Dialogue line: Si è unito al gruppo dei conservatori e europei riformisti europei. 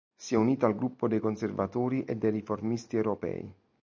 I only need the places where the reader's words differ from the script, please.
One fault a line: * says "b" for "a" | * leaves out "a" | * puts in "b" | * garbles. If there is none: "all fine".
* says "dei" for "europei"